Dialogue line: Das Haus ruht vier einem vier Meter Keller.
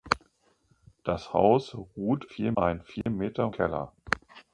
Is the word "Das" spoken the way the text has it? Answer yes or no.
yes